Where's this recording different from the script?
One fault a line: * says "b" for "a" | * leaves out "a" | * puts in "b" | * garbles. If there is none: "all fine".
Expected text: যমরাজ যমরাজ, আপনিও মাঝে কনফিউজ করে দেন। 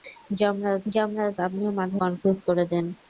all fine